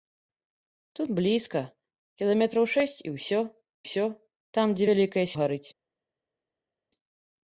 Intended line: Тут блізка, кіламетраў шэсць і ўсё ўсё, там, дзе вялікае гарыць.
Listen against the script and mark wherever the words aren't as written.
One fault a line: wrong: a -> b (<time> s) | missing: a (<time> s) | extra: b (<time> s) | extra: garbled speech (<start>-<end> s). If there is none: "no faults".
no faults